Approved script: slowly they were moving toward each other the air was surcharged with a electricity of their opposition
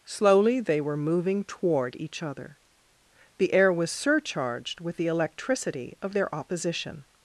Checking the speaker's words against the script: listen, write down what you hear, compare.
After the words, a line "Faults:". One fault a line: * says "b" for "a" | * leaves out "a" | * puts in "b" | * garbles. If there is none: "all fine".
slowly they were moving toward each other the air was surcharged with the electricity of their opposition
Faults:
* says "the" for "a"